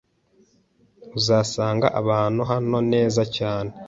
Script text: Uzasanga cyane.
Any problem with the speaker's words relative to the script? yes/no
yes